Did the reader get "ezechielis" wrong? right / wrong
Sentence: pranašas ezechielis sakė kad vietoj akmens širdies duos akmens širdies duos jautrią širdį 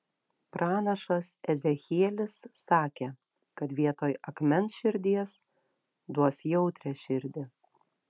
right